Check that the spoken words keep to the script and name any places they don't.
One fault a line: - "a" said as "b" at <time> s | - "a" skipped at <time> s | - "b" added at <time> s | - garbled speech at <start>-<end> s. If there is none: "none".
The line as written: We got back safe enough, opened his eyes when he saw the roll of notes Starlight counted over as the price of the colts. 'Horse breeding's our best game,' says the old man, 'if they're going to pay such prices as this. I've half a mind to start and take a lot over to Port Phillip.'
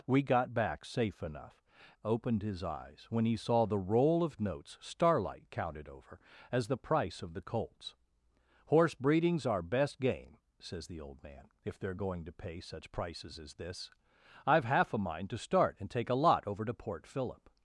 none